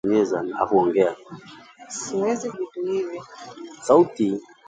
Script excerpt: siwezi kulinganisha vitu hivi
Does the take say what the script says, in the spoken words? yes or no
no